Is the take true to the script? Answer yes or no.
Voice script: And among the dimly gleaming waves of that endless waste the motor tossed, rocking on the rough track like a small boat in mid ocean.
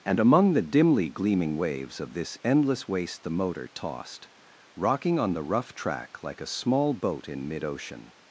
no